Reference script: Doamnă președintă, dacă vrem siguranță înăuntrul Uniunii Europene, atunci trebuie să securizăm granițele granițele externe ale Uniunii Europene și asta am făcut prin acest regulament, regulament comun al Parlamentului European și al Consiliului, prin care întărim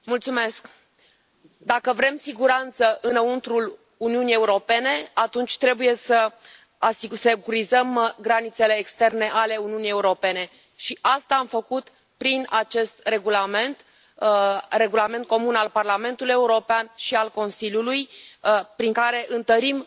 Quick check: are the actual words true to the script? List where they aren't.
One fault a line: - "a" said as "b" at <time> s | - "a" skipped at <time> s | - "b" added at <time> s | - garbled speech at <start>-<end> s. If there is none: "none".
- "granițele" skipped at 8.7 s